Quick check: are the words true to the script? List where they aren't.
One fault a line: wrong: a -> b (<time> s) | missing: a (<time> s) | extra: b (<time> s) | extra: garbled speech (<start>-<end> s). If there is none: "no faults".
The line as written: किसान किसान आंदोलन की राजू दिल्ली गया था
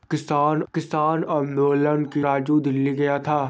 no faults